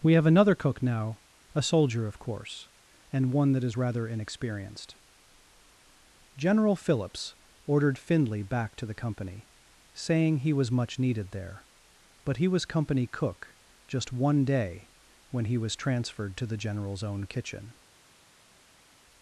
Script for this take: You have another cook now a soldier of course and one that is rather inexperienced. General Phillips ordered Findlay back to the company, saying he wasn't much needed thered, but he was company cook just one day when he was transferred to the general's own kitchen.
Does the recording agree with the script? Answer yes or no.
no